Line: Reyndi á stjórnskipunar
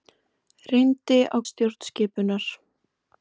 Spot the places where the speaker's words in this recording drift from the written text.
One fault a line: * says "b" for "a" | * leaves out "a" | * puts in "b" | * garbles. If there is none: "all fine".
all fine